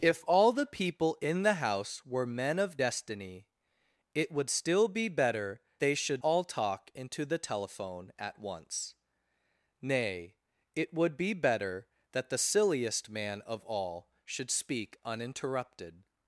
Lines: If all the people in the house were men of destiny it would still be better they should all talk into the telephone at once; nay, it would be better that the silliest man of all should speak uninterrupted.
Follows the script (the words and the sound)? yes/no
yes